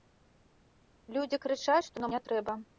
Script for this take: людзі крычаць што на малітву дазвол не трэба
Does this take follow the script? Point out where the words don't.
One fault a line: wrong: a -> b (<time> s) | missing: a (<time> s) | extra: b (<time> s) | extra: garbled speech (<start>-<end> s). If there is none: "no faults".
missing: малітву дазвол (2.1 s)